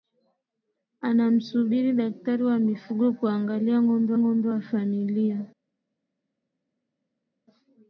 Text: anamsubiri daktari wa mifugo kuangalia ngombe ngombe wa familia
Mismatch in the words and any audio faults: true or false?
false